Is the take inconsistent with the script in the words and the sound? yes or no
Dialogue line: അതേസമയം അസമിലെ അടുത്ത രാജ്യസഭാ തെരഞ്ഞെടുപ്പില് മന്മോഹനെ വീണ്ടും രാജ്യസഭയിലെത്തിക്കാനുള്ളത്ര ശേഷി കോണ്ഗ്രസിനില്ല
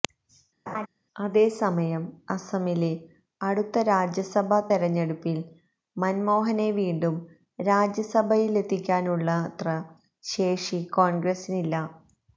yes